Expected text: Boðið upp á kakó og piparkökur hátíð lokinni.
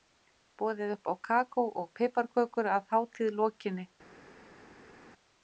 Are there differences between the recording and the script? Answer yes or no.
yes